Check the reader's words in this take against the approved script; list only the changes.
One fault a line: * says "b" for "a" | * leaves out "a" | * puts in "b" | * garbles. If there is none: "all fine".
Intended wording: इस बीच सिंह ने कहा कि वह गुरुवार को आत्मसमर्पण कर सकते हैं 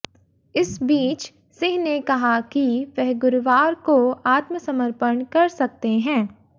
all fine